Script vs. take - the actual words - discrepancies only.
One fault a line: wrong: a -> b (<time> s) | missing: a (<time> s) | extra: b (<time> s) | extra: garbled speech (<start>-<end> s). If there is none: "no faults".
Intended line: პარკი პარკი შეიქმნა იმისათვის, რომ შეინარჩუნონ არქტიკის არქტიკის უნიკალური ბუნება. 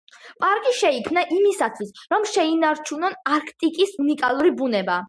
missing: პარკი (0.7 s)
missing: არქტიკის (4.0 s)